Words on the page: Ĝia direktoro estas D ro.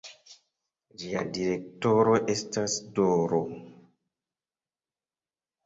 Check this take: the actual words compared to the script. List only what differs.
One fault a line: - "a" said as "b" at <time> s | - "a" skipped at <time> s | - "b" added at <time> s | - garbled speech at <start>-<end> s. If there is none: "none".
none